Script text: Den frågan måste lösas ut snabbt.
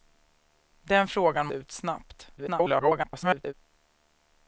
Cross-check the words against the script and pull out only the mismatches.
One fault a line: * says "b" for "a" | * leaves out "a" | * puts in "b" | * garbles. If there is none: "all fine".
* leaves out "måste lösas"
* garbles